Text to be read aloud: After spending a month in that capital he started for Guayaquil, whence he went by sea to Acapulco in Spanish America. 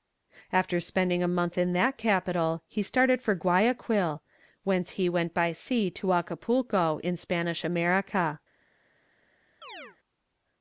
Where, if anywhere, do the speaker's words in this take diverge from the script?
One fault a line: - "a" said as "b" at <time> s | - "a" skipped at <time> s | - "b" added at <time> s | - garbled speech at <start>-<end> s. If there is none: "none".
none